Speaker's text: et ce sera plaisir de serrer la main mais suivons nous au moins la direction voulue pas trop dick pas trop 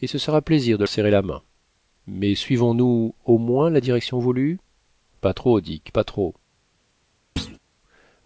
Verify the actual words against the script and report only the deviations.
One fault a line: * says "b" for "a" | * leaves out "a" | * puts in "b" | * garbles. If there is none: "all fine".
all fine